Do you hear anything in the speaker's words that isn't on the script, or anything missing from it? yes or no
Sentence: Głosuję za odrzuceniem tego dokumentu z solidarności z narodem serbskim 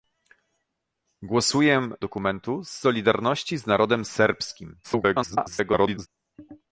yes